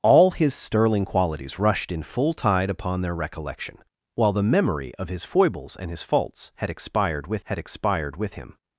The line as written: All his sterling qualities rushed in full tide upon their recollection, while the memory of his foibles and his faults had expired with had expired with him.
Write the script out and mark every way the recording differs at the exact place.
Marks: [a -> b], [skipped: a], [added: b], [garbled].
All his sterling qualities rushed in full tide upon their recollection, while the memory of his foibles and his faults had expired with had expired with him.